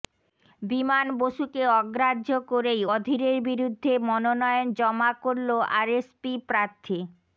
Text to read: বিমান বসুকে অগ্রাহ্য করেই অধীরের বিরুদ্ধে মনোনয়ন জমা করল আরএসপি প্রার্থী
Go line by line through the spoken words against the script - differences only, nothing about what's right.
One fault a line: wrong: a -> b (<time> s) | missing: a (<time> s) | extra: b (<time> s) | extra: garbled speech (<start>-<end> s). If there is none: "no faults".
no faults